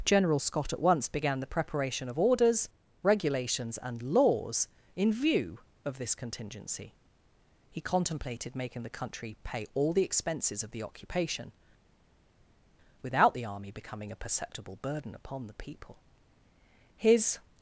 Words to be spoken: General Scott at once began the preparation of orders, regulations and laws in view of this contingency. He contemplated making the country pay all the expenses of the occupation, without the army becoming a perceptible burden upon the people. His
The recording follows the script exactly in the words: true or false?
true